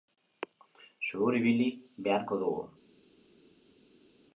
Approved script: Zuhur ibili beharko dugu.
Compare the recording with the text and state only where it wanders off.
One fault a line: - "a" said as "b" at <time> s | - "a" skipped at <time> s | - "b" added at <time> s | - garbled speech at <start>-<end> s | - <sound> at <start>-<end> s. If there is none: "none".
none